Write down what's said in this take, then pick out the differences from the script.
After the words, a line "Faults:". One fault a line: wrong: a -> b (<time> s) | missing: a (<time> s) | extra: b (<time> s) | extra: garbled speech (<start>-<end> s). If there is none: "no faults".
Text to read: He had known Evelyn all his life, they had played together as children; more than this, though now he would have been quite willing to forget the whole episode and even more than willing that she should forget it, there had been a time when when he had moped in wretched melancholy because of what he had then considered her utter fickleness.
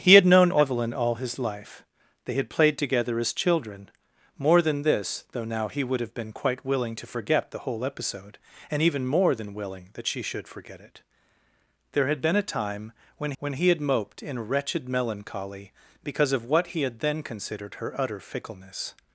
He had known Evelyn all his life, they had played together as children; more than this, though now he would have been quite willing to forget the whole episode and even more than willing that she should forget it, there had been a time when when he had moped in wretched melancholy because of what he had then considered her utter fickleness.
Faults:
no faults